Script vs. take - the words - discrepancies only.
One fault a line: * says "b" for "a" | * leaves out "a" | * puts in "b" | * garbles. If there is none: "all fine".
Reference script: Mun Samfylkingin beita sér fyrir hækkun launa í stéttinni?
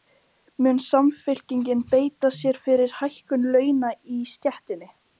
all fine